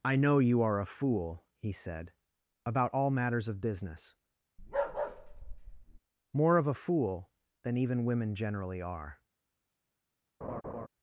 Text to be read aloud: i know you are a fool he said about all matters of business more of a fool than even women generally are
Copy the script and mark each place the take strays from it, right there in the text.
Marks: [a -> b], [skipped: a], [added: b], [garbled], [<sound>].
i know you are a fool he said about all matters of business [bark] more of a fool than even women generally are [laugh]